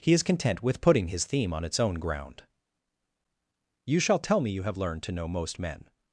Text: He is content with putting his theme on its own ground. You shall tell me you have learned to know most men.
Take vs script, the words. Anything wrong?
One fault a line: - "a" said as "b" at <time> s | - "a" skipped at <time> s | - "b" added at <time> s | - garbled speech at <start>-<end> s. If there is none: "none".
none